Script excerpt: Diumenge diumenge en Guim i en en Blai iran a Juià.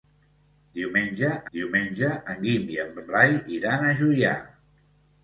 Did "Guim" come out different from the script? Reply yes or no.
no